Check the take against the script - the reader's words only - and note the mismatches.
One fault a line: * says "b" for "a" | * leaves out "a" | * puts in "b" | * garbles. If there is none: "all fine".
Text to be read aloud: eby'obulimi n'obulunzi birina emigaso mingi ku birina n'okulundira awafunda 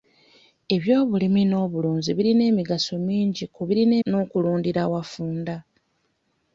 all fine